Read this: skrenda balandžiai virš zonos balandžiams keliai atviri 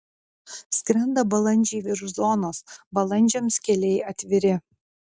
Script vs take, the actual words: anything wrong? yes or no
no